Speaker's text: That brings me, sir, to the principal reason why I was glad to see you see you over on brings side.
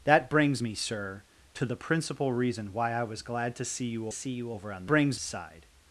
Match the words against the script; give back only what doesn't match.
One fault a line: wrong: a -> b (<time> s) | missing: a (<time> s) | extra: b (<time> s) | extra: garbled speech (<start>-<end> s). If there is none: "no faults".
no faults